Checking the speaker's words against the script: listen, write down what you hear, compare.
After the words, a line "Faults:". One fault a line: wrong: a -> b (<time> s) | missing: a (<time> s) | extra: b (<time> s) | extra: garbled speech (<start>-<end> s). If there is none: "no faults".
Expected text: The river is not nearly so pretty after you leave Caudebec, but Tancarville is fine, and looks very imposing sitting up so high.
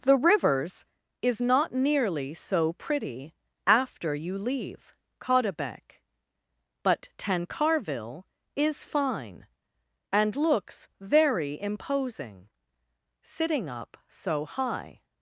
The rivers is not nearly so pretty after you leave Caudebec, but Tancarville is fine, and looks very imposing sitting up so high.
Faults:
wrong: river -> rivers (0.2 s)